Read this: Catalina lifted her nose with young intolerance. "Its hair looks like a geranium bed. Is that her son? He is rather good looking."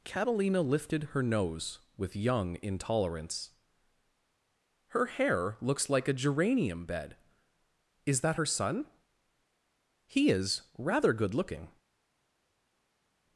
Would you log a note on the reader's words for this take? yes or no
yes